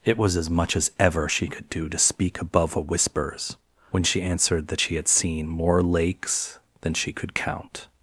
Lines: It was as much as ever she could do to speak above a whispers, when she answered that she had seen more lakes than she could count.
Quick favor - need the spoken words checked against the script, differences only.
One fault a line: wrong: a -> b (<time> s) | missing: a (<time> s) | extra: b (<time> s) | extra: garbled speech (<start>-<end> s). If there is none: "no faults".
no faults